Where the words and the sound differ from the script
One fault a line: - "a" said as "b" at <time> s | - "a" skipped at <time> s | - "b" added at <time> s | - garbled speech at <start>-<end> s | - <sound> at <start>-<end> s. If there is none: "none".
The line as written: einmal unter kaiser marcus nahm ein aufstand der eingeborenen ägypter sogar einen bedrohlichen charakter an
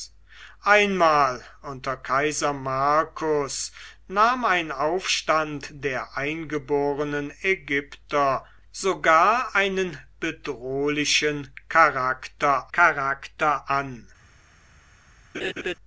- "charakter" added at 12.7 s
- laugh at 15.3-15.8 s